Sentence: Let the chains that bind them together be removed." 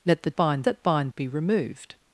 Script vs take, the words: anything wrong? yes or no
yes